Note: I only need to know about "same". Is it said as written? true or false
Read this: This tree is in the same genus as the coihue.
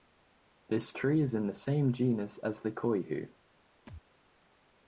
true